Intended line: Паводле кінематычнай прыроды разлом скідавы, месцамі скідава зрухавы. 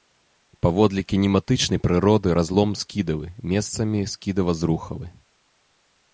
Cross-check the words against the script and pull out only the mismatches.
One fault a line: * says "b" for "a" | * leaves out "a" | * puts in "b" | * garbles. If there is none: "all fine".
all fine